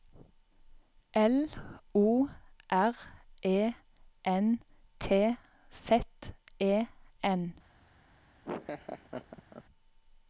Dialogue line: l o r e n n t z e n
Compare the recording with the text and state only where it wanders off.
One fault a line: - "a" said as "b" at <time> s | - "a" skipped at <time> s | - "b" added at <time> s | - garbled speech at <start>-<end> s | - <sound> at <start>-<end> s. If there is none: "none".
- "n" skipped at 4.6 s
- laugh at 8.4-9.6 s